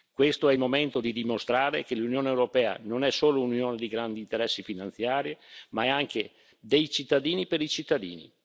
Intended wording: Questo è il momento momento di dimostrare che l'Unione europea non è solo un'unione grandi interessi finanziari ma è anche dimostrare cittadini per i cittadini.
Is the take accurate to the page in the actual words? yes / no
no